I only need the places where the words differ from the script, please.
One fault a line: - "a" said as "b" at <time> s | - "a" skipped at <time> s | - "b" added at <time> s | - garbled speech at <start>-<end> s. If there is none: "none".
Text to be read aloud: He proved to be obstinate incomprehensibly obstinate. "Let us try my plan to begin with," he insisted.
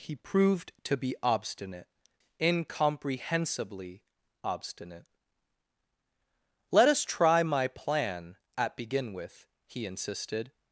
- "to" said as "at" at 8.6 s